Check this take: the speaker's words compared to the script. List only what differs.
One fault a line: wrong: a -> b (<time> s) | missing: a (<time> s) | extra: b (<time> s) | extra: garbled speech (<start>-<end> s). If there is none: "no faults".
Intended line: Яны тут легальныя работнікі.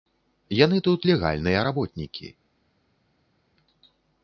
no faults